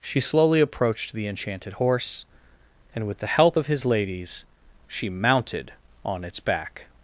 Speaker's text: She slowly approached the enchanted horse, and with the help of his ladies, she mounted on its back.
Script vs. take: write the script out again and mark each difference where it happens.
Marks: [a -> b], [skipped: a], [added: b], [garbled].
She slowly approached the enchanted horse, and with the help of his ladies, she mounted on its back.